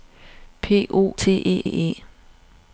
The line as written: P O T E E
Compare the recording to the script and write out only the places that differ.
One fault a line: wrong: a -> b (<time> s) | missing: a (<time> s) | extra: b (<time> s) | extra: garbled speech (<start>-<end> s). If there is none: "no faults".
no faults